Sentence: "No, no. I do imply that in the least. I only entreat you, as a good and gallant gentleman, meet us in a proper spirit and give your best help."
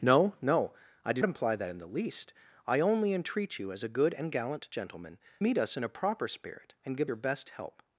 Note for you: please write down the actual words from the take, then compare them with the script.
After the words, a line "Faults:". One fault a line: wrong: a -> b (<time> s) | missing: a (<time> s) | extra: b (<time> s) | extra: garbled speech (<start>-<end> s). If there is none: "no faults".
"No, no. I do imply that in the least. I only entreat you, as a good and gallant gentleman, meet us in a proper spirit and give your best help."
Faults:
no faults